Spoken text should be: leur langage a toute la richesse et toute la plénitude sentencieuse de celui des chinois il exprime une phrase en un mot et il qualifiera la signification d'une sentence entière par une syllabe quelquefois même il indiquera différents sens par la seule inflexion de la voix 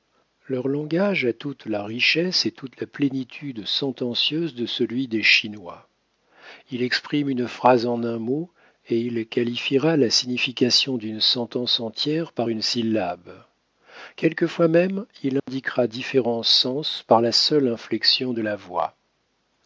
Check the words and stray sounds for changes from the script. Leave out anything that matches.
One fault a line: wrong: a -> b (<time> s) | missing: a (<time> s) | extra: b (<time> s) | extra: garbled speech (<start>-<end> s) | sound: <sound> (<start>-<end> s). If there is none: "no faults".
sound: dropout (15.4-15.5 s)